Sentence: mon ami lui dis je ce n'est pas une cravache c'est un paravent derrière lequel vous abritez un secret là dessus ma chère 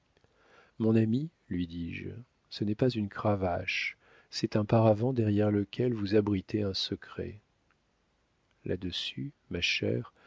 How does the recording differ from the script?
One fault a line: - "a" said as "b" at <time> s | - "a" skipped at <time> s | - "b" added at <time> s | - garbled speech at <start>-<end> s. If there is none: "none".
none